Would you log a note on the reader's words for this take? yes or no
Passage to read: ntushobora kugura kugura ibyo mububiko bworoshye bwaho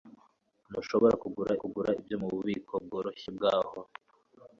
no